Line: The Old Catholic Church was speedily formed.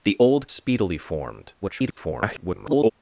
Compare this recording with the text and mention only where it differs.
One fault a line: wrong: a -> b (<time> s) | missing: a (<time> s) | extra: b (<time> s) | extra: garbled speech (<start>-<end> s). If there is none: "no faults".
missing: Catholic Church was (0.5 s)
extra: garbled speech (1.6-2.9 s)